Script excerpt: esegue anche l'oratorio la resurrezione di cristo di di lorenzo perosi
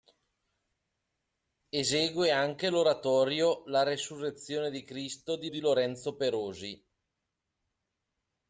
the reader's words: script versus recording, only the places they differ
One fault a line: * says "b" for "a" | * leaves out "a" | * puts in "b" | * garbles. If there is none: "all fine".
all fine